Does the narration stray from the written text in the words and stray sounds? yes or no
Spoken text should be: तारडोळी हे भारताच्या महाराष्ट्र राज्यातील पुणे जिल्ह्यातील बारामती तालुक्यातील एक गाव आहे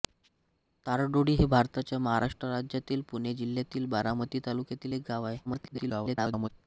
yes